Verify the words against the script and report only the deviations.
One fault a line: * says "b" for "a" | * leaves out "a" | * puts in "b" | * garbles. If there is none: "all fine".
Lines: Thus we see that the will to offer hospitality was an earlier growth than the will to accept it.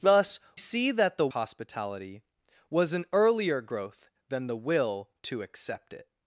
* leaves out "we"
* leaves out "will to offer"